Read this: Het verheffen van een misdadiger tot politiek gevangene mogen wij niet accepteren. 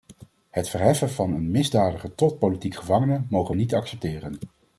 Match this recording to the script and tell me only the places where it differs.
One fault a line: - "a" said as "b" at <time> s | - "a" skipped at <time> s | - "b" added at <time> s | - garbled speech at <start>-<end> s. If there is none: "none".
- "wij" skipped at 3.5 s